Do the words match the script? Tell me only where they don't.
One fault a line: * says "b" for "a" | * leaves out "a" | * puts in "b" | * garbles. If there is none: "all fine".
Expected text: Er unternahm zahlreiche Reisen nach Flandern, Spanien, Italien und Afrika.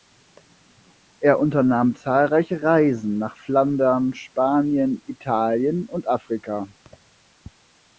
all fine